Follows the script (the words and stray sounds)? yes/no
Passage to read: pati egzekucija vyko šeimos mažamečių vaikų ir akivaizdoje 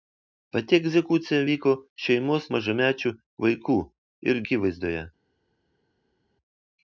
yes